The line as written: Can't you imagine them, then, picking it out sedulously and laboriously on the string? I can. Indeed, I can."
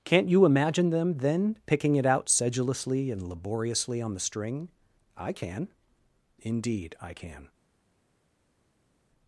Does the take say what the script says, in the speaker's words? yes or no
yes